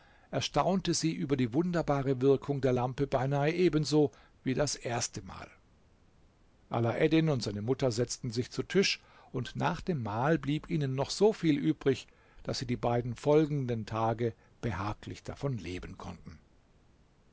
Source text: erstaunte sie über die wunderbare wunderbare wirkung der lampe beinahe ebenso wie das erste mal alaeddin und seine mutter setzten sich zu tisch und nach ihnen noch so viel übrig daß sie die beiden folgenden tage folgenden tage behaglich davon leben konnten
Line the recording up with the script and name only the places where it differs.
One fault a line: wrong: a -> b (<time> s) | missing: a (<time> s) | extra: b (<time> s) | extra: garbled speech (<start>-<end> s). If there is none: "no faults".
missing: wunderbare (2.2 s)
extra: dem mahl blieb (9.8 s)
missing: folgenden tage (14.3 s)